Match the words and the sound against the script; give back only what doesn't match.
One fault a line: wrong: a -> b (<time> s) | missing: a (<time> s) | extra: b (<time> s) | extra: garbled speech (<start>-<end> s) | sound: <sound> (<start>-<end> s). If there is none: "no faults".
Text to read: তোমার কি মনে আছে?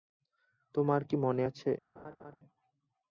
sound: laugh (2.0-2.4 s)